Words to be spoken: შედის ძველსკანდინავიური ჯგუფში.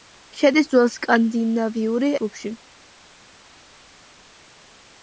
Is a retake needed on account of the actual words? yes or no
no